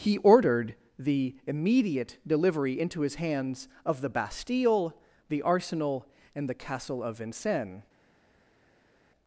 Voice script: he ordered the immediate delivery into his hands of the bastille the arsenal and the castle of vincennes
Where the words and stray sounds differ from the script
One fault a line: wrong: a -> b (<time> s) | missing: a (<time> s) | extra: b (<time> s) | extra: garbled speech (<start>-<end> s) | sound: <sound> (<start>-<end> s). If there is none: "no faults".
no faults